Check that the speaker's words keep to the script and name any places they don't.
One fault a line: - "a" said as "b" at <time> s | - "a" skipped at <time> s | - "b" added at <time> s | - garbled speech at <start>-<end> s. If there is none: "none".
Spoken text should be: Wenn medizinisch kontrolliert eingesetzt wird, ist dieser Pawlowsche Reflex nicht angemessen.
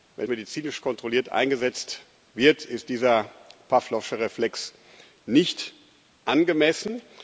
none